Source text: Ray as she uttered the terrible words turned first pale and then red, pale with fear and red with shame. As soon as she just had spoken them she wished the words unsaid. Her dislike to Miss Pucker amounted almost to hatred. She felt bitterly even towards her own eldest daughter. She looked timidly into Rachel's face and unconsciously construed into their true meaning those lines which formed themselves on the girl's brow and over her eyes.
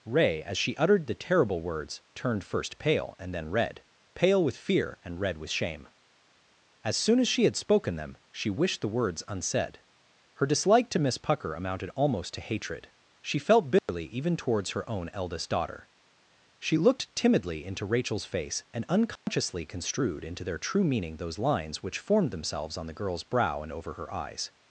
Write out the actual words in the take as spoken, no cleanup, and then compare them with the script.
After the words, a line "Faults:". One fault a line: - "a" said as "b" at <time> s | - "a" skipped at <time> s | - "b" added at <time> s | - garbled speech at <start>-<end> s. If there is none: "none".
Ray as she uttered the terrible words turned first pale and then red, pale with fear and red with shame. As soon as she had spoken them she wished the words unsaid. Her dislike to Miss Pucker amounted almost to hatred. She felt bitterly even towards her own eldest daughter. She looked timidly into Rachel's face and unconsciously construed into their true meaning those lines which formed themselves on the girl's brow and over her eyes.
Faults:
- "just" skipped at 7.4 s